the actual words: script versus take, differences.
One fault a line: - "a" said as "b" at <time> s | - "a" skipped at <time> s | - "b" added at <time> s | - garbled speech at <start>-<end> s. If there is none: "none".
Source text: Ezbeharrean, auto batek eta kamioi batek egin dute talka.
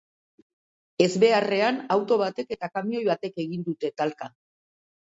none